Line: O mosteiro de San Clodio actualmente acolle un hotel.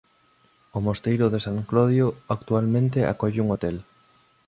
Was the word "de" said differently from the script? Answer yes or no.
no